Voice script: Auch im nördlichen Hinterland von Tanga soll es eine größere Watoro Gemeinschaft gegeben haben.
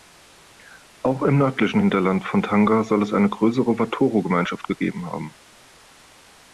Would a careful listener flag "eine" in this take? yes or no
no